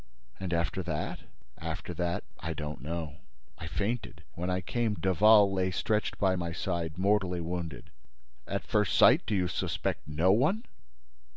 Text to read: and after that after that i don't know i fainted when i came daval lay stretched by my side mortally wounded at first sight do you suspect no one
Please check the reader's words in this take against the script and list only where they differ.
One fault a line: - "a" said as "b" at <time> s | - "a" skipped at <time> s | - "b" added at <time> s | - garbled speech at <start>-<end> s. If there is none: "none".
none